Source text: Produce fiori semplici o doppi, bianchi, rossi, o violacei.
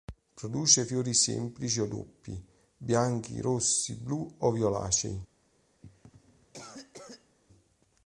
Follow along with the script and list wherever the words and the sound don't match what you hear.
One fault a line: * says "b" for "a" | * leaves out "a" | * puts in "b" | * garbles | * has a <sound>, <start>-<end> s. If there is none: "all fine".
* puts in "blu"
* has a cough, 5.8-7.4 s